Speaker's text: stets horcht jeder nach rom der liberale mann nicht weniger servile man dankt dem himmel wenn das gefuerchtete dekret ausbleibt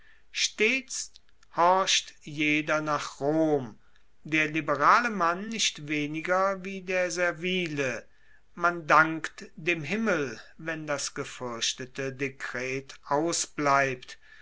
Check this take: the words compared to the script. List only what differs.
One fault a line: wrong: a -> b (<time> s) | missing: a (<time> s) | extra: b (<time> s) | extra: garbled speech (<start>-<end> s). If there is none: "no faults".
extra: wie der (6.6 s)